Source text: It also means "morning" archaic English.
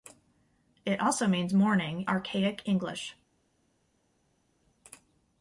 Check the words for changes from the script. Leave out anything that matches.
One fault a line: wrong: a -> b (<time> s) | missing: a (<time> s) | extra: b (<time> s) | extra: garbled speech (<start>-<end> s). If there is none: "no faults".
no faults